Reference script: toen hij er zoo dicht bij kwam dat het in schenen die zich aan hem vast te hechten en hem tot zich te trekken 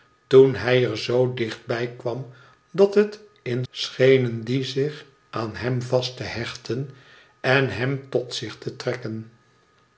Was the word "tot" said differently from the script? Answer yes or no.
no